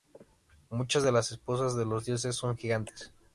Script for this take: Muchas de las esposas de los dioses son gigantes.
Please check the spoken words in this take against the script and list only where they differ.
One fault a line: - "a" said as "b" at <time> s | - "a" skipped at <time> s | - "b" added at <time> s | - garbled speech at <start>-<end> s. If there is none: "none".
none